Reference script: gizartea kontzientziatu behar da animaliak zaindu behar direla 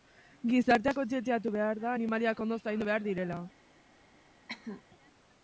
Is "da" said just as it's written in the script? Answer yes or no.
yes